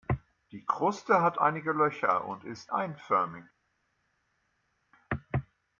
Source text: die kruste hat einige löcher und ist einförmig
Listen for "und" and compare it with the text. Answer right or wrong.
right